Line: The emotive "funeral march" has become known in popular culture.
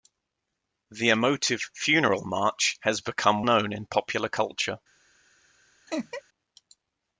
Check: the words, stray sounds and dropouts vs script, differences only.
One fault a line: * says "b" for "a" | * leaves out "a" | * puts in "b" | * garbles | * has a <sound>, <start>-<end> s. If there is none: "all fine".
* has a laugh, 5.9-6.2 s